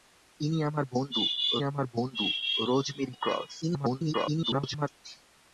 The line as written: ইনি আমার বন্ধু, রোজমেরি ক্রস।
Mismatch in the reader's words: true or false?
true